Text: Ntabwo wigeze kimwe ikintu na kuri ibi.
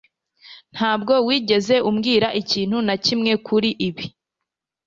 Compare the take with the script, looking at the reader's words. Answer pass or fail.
fail